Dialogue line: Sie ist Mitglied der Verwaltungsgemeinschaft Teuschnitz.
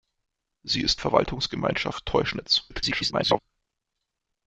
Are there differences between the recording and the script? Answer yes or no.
yes